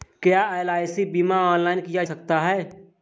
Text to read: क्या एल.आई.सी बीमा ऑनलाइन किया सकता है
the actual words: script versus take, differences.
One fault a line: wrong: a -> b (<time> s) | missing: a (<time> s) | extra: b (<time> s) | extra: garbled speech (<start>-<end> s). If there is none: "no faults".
no faults